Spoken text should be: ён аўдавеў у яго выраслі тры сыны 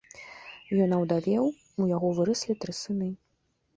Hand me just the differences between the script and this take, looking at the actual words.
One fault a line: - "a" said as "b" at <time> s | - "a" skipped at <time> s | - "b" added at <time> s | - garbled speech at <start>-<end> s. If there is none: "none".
none